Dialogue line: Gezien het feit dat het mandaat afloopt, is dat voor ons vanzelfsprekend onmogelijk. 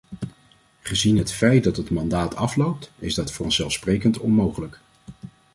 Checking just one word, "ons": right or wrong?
wrong